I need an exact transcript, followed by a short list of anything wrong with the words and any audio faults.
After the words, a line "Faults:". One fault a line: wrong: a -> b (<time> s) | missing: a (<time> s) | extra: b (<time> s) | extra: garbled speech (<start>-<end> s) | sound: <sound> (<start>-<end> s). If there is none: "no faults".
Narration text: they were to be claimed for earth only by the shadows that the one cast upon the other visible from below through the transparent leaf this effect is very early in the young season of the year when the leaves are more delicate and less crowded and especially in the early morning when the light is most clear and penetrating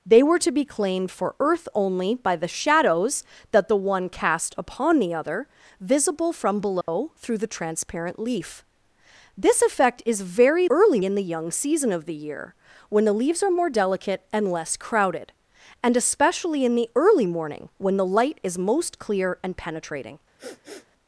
they were to be claimed for earth only by the shadows that the one cast upon the other visible from below through the transparent leaf this effect is very early in the young season of the year when the leaves are more delicate and less crowded and especially in the early morning when the light is most clear and penetrating
Faults:
sound: dropout (6.8-6.9 s)
sound: sniff (20.4-20.9 s)